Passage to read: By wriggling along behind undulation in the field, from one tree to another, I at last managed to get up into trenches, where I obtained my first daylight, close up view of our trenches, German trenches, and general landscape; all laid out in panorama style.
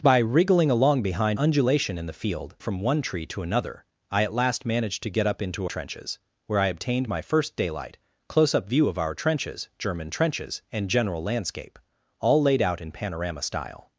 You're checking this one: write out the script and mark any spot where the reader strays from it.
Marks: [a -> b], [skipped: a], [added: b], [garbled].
By wriggling along behind undulation in the field, from one tree to another, I at last managed to get up into trenches, where I obtained my first daylight, close up view of our trenches, German trenches, and general landscape; all laid out in panorama style.